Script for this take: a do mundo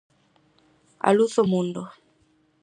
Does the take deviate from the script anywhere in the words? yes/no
yes